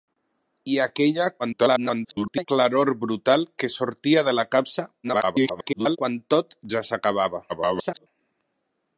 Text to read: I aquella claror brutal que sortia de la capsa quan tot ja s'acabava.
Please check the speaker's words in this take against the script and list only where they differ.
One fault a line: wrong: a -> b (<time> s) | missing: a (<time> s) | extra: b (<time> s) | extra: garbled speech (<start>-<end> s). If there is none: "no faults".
extra: garbled speech (1.4-2.5 s)
extra: garbled speech (5.0-6.0 s)
extra: garbled speech (7.5-8.1 s)